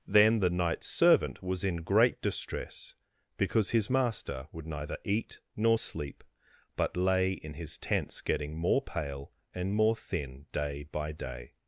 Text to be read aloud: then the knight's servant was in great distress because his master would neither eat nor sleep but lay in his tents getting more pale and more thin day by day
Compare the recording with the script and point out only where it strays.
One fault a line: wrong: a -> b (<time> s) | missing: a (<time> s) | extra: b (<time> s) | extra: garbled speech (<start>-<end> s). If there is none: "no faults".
no faults